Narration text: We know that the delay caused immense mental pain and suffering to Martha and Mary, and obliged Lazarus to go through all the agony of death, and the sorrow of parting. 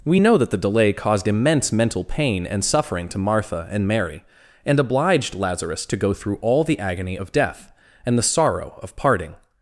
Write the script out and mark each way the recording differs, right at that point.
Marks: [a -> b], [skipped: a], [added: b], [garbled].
We know that the delay caused immense mental pain and suffering to Martha and Mary, and obliged Lazarus to go through all the agony of death, and the sorrow of parting.